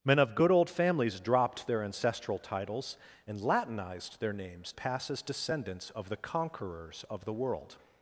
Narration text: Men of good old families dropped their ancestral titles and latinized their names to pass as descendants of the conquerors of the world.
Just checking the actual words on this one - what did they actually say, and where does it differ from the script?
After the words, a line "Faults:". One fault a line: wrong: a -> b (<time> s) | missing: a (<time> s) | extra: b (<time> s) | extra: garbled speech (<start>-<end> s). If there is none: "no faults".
Men of good old families dropped their ancestral titles and latinized their names pass as descendants of the conquerors of the world.
Faults:
missing: to (4.7 s)